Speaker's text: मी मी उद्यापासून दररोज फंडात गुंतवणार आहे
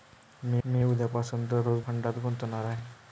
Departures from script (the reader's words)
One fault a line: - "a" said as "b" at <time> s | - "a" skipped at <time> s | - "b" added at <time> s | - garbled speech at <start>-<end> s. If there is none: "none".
none